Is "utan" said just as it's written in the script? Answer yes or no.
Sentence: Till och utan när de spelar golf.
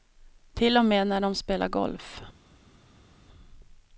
no